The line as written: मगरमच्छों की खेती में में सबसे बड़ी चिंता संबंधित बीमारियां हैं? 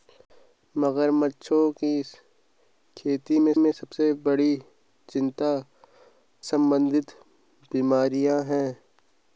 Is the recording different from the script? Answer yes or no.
no